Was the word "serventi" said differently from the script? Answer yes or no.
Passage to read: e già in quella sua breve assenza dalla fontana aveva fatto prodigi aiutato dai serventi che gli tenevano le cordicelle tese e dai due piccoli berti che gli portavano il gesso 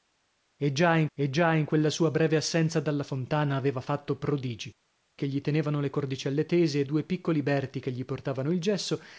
yes